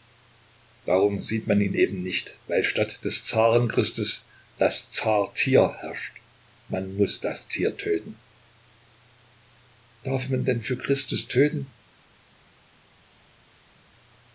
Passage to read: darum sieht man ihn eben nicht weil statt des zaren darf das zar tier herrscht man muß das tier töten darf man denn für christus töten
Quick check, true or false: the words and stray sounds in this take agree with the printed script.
false